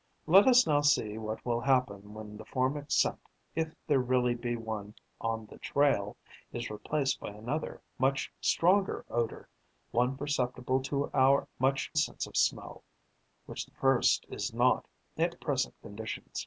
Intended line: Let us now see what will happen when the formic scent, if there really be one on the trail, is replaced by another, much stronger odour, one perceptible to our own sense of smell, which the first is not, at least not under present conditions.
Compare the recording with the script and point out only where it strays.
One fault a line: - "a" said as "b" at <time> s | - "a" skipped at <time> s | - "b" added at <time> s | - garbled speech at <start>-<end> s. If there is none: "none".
- "own" said as "much" at 11.6 s
- "least not under" skipped at 15.4 s